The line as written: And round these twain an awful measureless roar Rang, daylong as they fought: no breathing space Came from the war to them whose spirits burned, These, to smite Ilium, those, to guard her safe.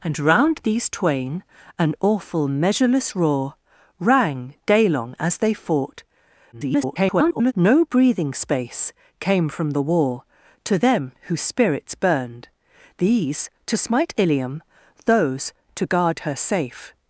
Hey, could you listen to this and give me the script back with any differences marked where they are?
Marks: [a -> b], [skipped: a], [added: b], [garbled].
And round these twain an awful measureless roar Rang, daylong as they fought: [garbled] no breathing space Came from the war to them whose spirits burned, These, to smite Ilium, those, to guard her safe.